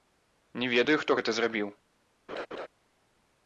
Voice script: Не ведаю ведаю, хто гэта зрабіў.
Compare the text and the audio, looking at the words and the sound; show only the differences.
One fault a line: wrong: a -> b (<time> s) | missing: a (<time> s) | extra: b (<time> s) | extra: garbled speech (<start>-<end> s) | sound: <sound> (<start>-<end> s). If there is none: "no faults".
missing: ведаю (0.9 s)
sound: laugh (2.3-2.7 s)